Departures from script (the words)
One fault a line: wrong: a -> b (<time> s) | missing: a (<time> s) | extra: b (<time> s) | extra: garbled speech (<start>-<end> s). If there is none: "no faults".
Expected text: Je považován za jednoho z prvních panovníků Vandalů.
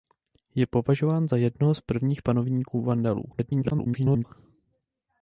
extra: garbled speech (3.3-4.2 s)